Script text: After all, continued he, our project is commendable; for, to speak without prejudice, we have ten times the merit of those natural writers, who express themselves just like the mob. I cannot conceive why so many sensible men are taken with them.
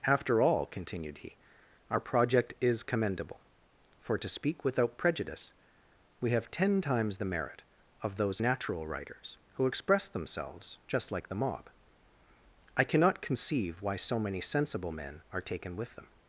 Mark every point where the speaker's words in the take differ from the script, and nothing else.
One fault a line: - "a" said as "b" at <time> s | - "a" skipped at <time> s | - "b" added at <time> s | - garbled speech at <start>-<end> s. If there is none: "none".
none